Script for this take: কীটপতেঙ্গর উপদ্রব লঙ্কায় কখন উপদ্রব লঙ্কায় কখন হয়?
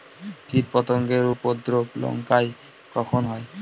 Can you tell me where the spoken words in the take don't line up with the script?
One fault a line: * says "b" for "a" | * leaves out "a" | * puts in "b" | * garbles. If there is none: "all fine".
* leaves out "উপদ্রব লঙ্কায় কখন"